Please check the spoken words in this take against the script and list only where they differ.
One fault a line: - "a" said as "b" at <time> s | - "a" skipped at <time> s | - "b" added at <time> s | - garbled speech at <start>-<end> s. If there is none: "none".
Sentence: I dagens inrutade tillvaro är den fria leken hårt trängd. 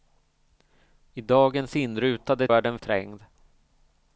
- "tillvaro" skipped at 2.5 s
- "fria leken hårt" skipped at 2.8 s